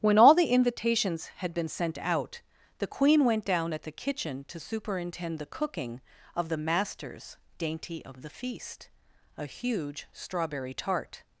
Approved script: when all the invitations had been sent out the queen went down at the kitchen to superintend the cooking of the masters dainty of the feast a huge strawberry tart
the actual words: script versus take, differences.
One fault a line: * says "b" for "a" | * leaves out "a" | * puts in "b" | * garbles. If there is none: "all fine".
all fine